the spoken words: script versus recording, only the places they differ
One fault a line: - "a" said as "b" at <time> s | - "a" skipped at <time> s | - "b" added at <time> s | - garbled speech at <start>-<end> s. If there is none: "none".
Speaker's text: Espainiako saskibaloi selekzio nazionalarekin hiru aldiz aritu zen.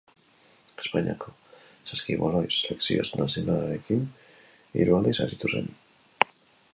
none